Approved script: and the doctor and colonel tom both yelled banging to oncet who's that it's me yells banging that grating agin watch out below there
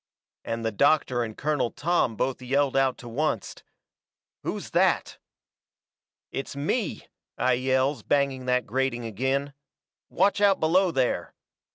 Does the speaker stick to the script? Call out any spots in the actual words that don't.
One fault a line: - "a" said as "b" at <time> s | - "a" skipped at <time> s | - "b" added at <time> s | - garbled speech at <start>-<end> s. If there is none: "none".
- "banging" said as "out" at 2.8 s
- "i" added at 7.4 s